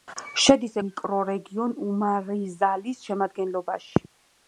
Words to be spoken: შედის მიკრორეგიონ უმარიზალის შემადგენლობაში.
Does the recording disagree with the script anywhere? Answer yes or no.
no